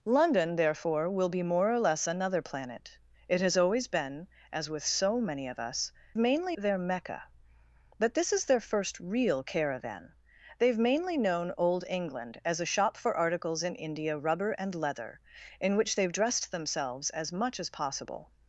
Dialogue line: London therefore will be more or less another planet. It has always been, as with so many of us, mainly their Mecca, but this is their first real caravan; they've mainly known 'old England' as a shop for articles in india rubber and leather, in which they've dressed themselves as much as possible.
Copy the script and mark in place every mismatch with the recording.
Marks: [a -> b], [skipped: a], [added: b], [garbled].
London therefore will be more or less another planet. It has always been, as with so many of us, mainly their Mecca, but this is their first real caravan; they've mainly known 'old England' as a shop for articles in india rubber and leather, in which they've dressed themselves as much as possible.